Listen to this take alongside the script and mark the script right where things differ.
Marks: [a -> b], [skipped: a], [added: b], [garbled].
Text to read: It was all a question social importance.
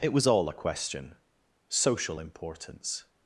It was all a question social importance.